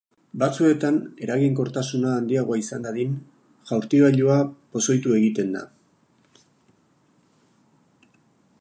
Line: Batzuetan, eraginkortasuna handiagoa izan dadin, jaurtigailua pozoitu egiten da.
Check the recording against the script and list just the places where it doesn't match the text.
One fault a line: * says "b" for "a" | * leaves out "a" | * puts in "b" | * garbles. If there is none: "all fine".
all fine